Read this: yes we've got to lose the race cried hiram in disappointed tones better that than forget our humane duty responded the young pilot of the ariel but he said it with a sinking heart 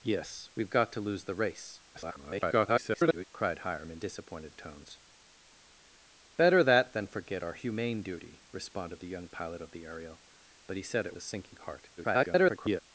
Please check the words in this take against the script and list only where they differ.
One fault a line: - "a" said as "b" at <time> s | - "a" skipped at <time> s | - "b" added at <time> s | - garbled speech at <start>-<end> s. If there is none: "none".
- garbled speech at 1.9-3.2 s
- "with" skipped at 11.2 s
- garbled speech at 12.0-12.8 s